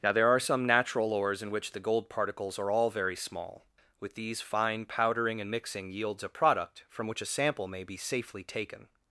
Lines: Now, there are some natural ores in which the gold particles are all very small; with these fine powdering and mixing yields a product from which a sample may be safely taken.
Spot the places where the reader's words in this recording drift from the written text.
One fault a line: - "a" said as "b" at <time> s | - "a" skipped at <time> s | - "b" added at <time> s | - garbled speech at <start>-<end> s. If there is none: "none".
none